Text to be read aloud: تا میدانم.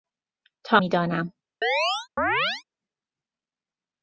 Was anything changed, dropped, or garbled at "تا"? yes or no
no